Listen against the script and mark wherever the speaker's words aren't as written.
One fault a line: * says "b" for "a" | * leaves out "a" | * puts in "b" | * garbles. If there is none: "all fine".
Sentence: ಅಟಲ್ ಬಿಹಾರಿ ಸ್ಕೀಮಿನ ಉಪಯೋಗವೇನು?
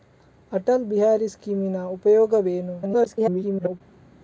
* garbles